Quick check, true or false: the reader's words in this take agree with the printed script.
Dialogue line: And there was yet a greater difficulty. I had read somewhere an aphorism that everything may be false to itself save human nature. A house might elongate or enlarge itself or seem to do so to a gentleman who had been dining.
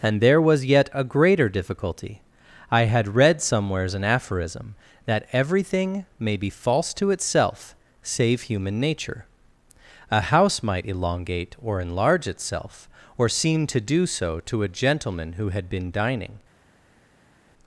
false